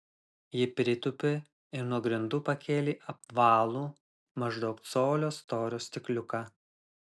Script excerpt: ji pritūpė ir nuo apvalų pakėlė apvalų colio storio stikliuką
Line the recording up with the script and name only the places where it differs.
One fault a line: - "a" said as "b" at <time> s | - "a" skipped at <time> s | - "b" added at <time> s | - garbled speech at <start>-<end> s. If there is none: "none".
- "apvalų" said as "grindų" at 2.1 s
- "maždaug" added at 4.5 s